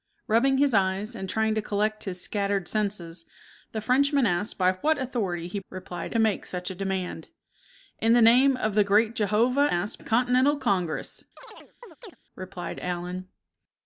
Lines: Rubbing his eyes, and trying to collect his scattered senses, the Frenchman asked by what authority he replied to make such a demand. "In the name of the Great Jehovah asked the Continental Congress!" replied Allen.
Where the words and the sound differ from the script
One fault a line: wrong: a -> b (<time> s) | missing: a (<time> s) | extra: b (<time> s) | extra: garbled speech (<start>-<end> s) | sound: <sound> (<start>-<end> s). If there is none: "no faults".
sound: chirp (11.4-12.2 s)